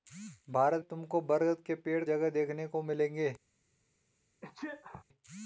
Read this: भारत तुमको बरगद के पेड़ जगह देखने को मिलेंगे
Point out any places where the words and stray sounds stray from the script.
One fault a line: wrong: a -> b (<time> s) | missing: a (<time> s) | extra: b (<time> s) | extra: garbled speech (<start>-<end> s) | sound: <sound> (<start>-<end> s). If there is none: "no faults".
sound: sneeze (4.4-5.0 s)